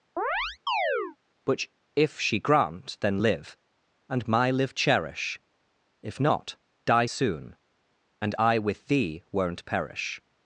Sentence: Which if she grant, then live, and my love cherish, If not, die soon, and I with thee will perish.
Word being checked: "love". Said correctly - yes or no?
no